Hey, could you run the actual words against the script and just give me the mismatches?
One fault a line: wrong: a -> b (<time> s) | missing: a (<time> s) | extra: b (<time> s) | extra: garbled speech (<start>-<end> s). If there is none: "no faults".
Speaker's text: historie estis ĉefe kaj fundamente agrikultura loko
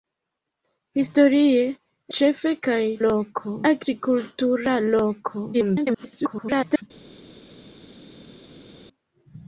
missing: estis (1.6 s)
wrong: fundamente -> loko (3.0 s)
extra: garbled speech (5.5-6.8 s)